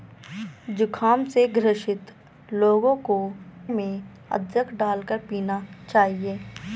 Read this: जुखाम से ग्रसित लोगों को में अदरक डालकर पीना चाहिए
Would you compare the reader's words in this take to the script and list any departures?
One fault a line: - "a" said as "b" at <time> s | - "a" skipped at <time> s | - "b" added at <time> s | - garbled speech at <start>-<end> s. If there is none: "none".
none